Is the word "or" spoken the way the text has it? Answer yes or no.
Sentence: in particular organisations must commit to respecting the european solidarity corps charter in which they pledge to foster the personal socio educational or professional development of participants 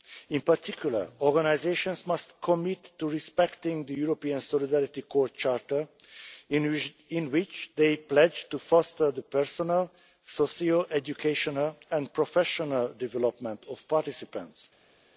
no